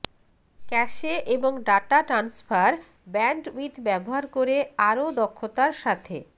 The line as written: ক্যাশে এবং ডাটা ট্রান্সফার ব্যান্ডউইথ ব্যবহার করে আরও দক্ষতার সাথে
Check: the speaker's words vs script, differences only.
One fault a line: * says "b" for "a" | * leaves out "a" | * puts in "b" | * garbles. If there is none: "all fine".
all fine